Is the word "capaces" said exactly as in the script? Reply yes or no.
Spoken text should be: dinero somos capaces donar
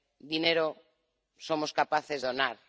yes